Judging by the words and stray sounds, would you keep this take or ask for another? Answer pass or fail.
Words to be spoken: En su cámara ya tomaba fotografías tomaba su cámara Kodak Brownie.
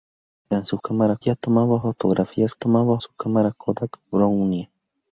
pass